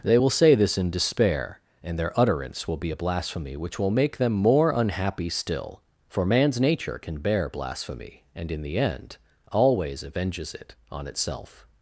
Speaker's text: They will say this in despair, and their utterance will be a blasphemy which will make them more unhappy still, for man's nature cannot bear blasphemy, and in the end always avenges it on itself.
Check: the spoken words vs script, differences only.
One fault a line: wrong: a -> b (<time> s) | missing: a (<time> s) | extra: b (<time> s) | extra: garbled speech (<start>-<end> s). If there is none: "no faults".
wrong: cannot -> can (7.0 s)